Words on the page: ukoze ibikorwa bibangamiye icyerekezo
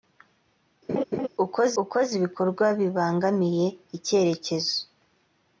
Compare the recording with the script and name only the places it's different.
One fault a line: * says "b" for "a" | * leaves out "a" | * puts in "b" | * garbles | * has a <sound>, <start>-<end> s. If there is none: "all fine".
* has a laugh, 0.9-1.3 s
* puts in "ukoze"